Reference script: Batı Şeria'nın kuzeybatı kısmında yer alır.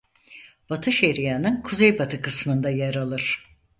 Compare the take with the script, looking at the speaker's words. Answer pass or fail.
pass